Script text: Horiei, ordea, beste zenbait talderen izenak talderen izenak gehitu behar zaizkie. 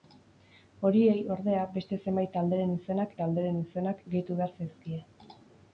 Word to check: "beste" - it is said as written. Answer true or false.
true